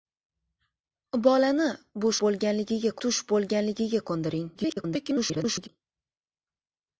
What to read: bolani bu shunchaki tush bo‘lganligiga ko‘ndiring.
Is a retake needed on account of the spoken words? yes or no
yes